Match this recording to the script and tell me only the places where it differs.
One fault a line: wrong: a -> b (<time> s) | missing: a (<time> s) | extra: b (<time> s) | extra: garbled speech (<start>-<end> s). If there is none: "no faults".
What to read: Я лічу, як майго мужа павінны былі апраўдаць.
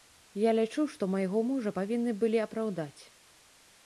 wrong: як -> што (0.9 s)